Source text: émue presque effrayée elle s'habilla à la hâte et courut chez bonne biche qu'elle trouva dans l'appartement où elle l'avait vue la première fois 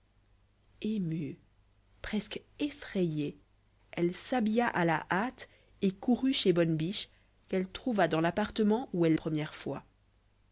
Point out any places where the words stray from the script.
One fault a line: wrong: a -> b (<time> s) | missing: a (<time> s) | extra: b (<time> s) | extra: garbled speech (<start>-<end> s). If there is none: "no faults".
missing: l'avait vue la (9.1 s)